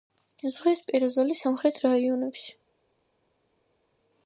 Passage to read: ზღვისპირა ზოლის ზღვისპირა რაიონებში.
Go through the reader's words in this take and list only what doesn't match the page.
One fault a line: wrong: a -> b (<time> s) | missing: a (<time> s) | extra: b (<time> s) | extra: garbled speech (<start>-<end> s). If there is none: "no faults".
wrong: ზღვისპირა -> სამხრეთ (1.5 s)